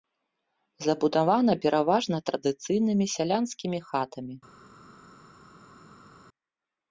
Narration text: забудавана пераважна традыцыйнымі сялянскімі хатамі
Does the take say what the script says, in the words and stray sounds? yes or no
yes